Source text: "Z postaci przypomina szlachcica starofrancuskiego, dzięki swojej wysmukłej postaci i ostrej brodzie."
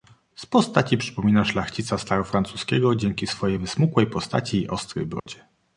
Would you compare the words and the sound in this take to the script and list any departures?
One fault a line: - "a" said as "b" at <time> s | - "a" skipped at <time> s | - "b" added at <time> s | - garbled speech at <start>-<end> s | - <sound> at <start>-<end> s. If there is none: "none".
- dropout at 5.2-5.3 s